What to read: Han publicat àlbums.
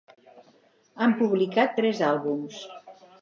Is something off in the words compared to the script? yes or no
yes